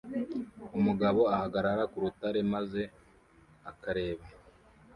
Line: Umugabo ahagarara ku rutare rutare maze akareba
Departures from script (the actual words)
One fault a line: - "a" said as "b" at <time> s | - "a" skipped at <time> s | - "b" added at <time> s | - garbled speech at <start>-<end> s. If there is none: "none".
- "rutare" skipped at 2.4 s